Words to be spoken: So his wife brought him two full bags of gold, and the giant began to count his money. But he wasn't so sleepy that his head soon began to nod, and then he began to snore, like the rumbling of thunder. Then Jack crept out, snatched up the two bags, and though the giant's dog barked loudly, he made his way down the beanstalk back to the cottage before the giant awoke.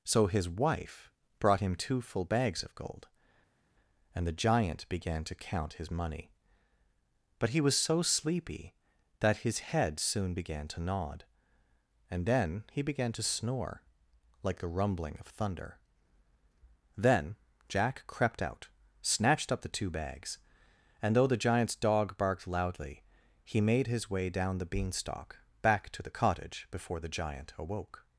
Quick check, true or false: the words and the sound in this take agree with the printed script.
false